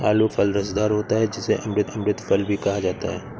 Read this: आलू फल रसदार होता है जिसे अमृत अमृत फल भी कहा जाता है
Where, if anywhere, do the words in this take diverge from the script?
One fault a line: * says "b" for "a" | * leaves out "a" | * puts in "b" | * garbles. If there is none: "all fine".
all fine